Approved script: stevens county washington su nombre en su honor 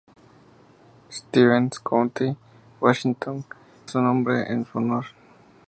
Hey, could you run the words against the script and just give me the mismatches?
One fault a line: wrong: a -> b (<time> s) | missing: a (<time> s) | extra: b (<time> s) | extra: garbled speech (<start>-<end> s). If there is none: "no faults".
no faults